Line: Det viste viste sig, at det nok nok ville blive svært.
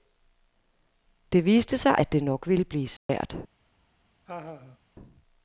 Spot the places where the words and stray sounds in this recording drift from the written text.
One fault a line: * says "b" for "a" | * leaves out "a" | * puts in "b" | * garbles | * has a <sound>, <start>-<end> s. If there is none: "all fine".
* leaves out "viste"
* leaves out "nok"
* has a dropout, 3.0-3.1 s
* has a laugh, 4.3-4.8 s